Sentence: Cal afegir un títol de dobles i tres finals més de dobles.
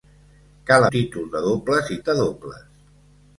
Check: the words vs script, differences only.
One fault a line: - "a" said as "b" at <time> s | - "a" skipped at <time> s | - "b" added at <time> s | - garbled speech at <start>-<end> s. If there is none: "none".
- "afegir un" skipped at 0.8 s
- "tres finals més" skipped at 2.0 s